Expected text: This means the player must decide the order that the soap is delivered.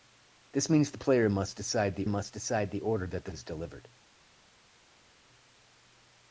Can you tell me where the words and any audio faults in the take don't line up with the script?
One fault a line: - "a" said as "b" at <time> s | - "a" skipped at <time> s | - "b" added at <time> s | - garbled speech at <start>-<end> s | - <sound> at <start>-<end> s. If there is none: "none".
- "must decide the" added at 2.1 s
- "soap" skipped at 3.3 s